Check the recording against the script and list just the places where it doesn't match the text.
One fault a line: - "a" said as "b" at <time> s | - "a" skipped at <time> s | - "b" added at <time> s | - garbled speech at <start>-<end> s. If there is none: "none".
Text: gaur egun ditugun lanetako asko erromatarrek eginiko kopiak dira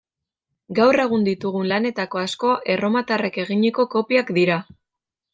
none